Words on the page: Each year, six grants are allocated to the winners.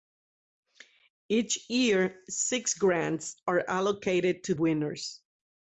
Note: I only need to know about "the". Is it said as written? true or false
false